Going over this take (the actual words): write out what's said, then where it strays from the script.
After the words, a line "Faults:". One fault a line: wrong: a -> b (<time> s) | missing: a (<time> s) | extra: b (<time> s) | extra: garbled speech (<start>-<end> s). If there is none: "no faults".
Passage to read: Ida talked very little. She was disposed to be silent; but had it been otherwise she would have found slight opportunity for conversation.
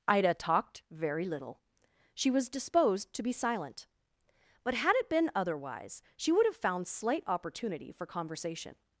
Ida talked very little. She was disposed to be silent; but had it been otherwise she would have found slight opportunity for conversation.
Faults:
no faults